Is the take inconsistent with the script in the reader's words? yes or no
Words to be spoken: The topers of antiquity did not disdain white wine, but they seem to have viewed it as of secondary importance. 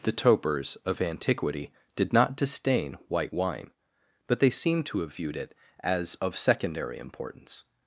no